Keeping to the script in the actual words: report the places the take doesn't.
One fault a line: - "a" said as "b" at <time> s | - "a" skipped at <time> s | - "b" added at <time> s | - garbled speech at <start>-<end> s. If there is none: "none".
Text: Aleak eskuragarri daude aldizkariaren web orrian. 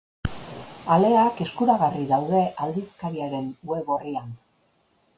none